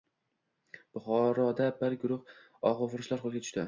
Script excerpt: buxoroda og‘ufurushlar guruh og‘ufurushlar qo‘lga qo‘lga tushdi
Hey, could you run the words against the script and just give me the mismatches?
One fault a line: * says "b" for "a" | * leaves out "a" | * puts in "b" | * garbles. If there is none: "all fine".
* says "bir" for "og‘ufurushlar"
* leaves out "qo‘lga"